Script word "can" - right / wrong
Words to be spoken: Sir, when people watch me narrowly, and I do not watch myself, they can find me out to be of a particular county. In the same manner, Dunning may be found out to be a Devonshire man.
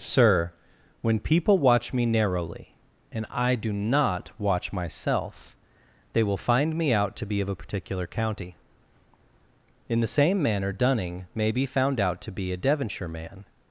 wrong